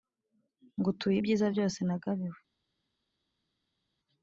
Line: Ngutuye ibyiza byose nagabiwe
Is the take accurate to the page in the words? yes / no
yes